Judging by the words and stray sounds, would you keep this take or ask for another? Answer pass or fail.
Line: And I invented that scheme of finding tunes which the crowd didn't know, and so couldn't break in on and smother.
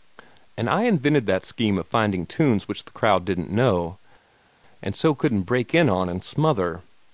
pass